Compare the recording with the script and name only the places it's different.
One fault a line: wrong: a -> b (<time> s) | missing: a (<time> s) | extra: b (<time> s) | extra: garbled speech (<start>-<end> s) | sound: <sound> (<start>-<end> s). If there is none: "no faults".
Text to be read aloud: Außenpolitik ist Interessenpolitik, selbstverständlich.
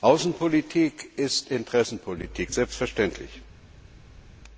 no faults